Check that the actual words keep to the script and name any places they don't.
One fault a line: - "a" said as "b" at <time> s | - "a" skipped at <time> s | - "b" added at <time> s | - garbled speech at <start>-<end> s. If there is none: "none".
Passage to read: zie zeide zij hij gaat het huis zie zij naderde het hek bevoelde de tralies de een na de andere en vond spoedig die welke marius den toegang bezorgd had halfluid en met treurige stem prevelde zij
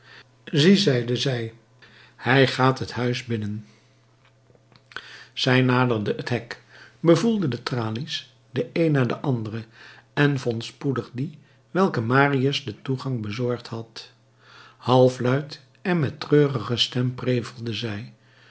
- "zie" said as "binnen" at 3.2 s